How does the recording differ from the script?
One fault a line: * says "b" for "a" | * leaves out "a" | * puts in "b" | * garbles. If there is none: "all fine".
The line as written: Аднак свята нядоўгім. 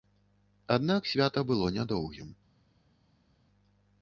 * puts in "было"